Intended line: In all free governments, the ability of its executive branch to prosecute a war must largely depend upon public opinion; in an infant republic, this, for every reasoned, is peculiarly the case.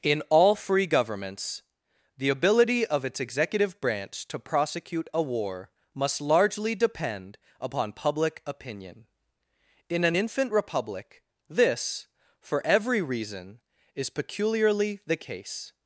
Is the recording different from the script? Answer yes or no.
yes